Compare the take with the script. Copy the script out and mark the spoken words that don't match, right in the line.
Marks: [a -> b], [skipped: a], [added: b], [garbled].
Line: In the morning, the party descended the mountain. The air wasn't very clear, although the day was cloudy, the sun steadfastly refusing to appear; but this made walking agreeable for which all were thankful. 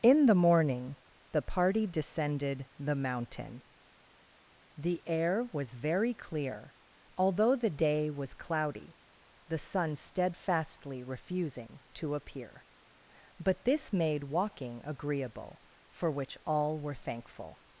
In the morning, the party descended the mountain. The air [wasn't -> was] very clear, although the day was cloudy, the sun steadfastly refusing to appear; but this made walking agreeable for which all were thankful.